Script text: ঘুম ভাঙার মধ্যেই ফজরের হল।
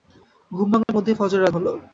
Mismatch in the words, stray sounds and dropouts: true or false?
true